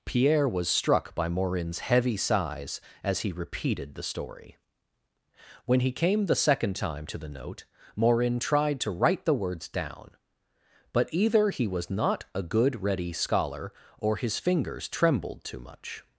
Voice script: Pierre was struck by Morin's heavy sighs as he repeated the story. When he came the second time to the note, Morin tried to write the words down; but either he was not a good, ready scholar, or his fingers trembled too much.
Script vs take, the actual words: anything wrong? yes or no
no